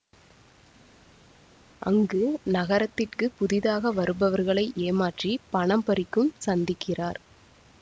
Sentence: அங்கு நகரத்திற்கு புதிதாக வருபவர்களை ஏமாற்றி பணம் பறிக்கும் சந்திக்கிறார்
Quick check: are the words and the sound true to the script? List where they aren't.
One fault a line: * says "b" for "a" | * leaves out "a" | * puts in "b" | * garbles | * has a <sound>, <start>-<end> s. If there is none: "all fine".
all fine